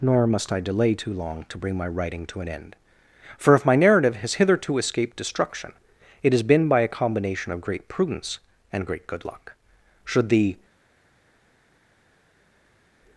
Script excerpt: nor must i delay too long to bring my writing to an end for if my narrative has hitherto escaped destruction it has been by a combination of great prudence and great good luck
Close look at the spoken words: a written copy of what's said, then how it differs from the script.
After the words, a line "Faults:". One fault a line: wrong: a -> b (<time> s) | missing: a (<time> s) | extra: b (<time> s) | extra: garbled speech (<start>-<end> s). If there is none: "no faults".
nor must i delay too long to bring my writing to an end for if my narrative has hitherto escaped destruction it has been by a combination of great prudence and great good luck should the
Faults:
extra: should the (10.0 s)